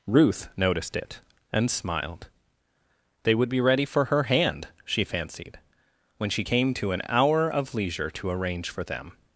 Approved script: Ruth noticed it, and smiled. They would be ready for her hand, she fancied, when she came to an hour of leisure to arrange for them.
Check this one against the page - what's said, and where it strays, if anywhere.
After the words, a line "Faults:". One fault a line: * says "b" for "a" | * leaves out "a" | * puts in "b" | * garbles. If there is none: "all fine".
Ruth noticed it, and smiled. They would be ready for her hand, she fancied, when she came to an hour of leisure to arrange for them.
Faults:
all fine